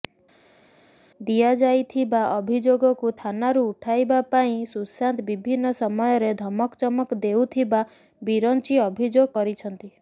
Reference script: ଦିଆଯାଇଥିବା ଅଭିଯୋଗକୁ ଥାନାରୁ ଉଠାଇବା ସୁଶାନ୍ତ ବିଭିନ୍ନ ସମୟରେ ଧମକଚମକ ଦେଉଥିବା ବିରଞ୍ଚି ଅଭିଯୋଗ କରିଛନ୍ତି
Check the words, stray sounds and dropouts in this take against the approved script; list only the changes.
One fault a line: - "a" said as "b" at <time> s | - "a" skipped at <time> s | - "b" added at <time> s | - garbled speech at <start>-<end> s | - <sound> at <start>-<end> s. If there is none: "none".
- "ପାଇଁ" added at 4.3 s